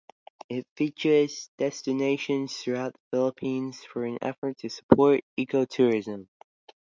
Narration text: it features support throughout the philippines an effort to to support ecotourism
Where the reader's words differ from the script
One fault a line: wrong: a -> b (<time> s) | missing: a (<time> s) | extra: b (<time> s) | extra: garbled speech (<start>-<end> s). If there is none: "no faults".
wrong: support -> destinations (1.6 s)
extra: for (3.8 s)
missing: to (4.7 s)